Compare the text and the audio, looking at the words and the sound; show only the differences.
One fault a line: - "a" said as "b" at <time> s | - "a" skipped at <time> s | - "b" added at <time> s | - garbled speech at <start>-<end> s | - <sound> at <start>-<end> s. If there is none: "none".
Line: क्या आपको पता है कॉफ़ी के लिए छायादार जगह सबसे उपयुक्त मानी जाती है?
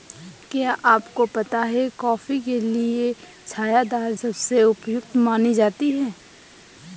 - "जगह" skipped at 4.1 s